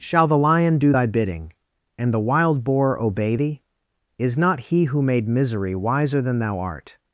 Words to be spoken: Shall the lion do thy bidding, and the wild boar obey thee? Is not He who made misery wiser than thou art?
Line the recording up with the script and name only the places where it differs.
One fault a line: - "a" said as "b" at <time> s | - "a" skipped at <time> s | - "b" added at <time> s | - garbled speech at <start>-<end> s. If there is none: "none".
none